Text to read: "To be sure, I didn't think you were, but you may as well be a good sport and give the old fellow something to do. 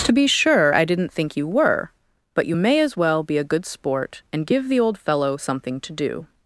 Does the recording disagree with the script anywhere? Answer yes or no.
no